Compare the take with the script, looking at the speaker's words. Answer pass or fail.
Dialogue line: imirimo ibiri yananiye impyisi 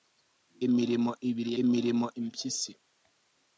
fail